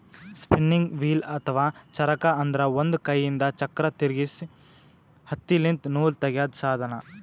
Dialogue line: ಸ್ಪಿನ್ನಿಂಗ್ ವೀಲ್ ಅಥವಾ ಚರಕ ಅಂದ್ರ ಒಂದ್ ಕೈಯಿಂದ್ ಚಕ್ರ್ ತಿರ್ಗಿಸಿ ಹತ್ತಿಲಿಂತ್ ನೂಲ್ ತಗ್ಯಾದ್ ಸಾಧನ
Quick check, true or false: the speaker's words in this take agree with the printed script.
true